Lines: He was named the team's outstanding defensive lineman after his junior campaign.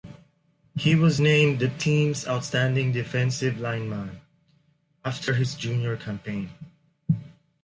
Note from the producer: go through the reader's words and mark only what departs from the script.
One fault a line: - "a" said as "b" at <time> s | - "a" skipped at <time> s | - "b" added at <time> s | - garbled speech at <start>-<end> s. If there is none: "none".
none